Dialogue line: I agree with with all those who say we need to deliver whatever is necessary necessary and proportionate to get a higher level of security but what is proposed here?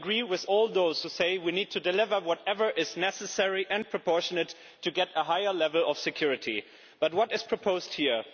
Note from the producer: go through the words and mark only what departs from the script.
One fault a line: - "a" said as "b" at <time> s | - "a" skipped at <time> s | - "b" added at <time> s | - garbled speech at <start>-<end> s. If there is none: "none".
- "with" skipped at 0.5 s
- "necessary" skipped at 3.7 s